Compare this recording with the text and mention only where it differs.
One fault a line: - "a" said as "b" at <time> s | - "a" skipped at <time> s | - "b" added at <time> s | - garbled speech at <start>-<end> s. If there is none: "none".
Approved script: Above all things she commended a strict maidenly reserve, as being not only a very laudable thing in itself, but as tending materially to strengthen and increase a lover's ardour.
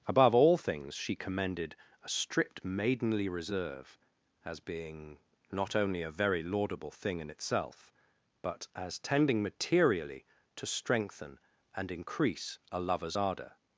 none